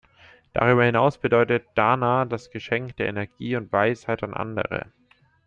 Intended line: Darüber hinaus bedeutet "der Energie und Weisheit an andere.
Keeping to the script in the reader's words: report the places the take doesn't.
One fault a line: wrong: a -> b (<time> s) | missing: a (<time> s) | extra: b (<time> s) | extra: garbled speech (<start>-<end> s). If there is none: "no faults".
extra: dana das Geschenk (1.8 s)